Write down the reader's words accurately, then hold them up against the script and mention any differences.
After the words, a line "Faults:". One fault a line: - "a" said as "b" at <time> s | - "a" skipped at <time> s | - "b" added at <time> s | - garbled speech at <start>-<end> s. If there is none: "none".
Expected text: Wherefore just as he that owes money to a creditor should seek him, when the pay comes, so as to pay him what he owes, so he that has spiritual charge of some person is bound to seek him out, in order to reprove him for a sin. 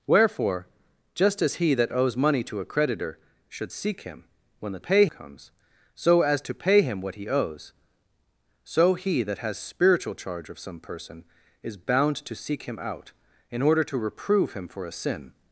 Wherefore just as he that owes money to a creditor should seek him, when the pay comes, so as to pay him what he owes, so he that has spiritual charge of some person is bound to seek him out, in order to reprove him for a sin.
Faults:
none